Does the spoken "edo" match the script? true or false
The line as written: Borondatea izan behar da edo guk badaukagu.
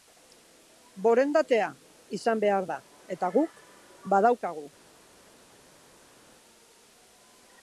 false